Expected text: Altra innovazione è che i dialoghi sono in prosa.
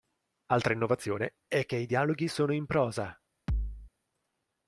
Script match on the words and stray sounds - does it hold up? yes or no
no